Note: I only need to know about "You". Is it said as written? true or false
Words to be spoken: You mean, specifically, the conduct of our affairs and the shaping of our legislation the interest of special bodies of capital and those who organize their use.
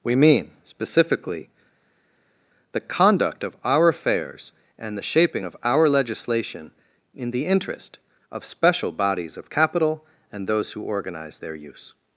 false